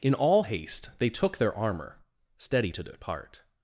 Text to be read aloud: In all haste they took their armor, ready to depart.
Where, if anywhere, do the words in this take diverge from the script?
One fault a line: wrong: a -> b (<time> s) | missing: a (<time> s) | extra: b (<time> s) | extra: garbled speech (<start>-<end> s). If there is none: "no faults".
wrong: ready -> steady (2.4 s)